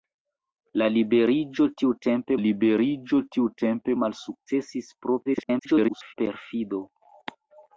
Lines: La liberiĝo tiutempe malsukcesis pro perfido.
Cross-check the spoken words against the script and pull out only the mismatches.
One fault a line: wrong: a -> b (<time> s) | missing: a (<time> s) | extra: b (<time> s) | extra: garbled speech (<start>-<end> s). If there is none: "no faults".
extra: liberiĝo tiutempe (2.4 s)
extra: garbled speech (5.3-6.1 s)